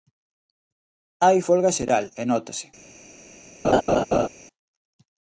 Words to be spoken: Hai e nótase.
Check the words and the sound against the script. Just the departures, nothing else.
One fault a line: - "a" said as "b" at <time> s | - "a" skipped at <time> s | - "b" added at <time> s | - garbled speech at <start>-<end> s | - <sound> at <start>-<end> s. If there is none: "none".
- "folga xeral" added at 1.5 s
- laugh at 3.6-4.3 s